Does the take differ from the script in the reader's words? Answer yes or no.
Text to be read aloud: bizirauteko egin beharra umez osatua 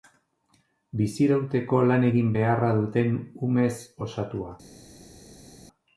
yes